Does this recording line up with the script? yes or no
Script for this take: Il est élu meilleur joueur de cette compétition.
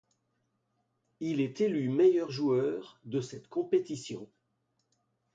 yes